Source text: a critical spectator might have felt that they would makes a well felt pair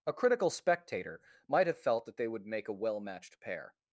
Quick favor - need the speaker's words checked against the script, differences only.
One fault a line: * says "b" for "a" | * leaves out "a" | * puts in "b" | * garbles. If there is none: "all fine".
* says "make" for "makes"
* says "matched" for "felt"